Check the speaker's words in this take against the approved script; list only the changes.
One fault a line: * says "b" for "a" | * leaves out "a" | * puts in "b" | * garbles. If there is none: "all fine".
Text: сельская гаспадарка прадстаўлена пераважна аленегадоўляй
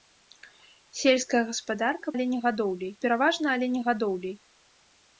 * says "аленегадоўляй" for "прадстаўлена"